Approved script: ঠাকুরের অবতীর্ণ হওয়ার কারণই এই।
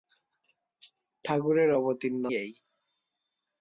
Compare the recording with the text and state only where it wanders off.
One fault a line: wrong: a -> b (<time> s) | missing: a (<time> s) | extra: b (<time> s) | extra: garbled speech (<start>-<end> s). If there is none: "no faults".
missing: হওয়ার কারণই (2.2 s)